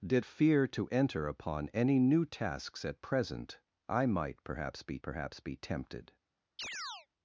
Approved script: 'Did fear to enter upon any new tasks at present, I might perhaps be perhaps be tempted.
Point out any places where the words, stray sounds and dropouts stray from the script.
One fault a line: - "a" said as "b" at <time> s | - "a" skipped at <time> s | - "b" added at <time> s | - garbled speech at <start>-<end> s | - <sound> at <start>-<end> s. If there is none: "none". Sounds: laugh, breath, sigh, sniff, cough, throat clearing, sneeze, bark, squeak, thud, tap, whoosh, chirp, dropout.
- chirp at 6.6-7.1 s